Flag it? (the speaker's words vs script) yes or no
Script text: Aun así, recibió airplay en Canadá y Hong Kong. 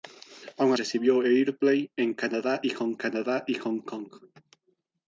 yes